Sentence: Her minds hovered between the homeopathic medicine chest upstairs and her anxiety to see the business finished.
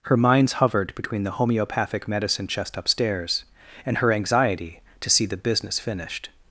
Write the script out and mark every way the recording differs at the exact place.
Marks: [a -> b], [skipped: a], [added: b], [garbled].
Her minds hovered between the homeopathic medicine chest upstairs and her anxiety to see the business finished.